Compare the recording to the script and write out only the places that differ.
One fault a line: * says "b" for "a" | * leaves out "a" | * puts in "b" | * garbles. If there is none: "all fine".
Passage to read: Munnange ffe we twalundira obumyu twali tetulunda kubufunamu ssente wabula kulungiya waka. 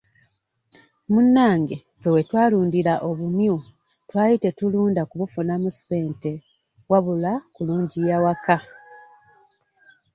all fine